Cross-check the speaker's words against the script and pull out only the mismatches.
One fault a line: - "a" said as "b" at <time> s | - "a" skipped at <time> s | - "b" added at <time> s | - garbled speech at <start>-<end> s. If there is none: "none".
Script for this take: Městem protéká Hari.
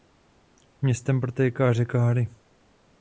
- "řeka" added at 1.7 s